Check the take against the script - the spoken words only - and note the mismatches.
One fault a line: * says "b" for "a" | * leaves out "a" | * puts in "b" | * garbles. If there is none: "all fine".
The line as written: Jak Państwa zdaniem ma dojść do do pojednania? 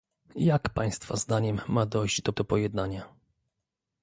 all fine